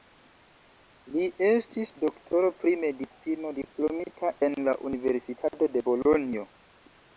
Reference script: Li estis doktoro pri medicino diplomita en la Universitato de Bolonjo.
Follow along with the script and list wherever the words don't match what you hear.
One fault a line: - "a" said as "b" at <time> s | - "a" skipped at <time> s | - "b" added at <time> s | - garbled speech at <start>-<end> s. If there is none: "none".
none